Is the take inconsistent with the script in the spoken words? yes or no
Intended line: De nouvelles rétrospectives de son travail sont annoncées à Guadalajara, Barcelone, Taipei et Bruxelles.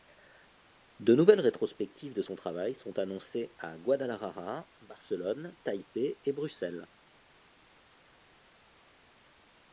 no